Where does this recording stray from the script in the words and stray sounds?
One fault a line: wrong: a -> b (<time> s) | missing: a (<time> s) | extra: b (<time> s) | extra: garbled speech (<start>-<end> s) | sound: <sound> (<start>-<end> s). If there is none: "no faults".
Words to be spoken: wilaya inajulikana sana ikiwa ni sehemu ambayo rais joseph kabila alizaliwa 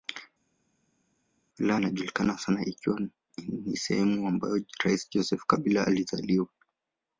no faults